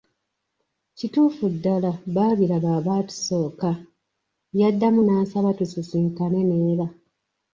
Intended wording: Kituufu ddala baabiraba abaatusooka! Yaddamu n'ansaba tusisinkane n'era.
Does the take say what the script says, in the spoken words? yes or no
yes